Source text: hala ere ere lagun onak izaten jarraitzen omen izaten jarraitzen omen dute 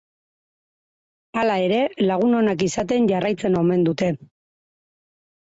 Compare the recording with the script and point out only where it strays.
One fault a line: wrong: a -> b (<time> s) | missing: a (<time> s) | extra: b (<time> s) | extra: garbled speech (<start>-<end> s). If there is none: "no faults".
missing: ere (1.8 s)
missing: izaten jarraitzen omen (3.9 s)